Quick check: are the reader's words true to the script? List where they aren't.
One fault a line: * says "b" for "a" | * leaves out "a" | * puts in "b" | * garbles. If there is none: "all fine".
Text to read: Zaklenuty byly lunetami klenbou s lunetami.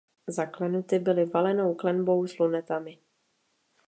* says "valenou" for "lunetami"